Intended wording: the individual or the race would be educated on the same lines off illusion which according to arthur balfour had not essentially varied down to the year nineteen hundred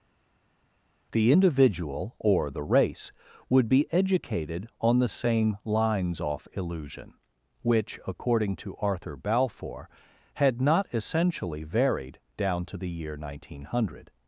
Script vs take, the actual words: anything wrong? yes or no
no